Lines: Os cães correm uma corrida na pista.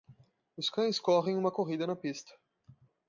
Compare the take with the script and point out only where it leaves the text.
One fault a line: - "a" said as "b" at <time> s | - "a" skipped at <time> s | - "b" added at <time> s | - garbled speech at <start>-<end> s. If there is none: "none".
none